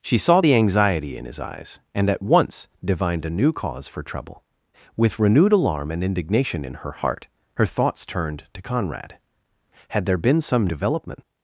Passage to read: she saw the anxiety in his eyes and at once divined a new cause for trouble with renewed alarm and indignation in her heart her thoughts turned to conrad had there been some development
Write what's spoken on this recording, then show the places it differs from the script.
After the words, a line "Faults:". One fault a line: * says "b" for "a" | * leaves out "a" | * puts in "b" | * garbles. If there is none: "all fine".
she saw the anxiety in his eyes and at once divined a new cause for trouble with renewed alarm and indignation in her heart her thoughts turned to conrad had there been some development
Faults:
all fine